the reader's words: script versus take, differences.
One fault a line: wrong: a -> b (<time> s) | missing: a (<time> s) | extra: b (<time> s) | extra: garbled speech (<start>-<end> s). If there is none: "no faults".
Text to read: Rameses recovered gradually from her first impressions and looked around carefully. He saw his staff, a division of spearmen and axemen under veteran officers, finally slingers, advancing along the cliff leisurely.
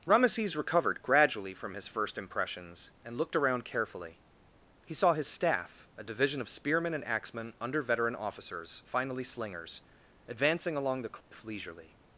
wrong: her -> his (1.8 s)